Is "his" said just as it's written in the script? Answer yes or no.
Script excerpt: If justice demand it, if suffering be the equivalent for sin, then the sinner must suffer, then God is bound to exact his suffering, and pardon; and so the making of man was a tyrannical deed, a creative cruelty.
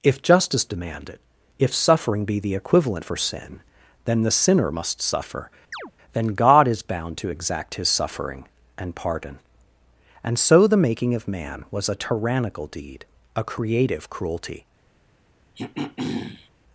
yes